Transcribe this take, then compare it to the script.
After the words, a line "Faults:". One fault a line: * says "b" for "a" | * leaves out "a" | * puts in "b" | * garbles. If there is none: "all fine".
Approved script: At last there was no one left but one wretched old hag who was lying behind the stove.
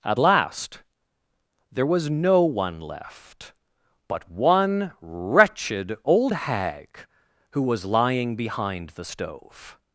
At last there was no one left but one wretched old hag who was lying behind the stove.
Faults:
all fine